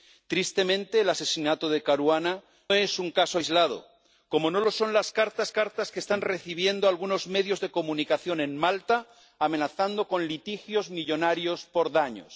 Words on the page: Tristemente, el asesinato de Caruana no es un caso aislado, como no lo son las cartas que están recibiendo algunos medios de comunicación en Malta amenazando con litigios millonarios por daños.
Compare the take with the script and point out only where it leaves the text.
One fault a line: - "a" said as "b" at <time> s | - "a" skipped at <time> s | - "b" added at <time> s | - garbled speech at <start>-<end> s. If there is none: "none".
- "no" skipped at 2.4 s
- "cartas" added at 5.5 s